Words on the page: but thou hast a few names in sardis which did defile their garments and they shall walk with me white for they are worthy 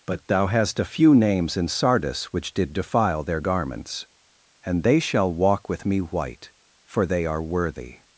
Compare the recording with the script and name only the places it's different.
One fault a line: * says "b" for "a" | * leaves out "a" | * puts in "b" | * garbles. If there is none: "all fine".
all fine